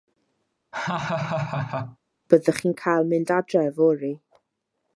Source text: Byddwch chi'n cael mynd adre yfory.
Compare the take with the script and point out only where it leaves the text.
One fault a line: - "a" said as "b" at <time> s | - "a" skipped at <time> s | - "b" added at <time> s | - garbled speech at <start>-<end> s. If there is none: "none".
none